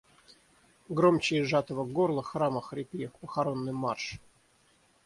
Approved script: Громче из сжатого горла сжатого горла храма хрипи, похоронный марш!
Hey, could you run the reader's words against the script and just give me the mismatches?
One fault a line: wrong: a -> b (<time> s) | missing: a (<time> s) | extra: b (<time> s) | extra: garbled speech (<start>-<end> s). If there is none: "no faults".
missing: сжатого горла (2.2 s)